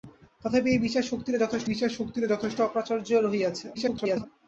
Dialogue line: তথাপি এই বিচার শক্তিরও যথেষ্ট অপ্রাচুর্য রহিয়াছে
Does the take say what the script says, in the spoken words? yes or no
no